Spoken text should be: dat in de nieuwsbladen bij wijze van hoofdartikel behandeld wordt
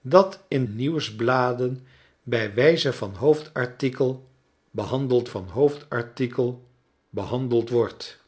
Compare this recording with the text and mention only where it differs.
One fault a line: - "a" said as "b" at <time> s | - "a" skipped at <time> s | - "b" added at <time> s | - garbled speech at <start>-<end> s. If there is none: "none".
- "de" skipped at 0.7 s
- "van hoofdartikel behandeld" added at 5.2 s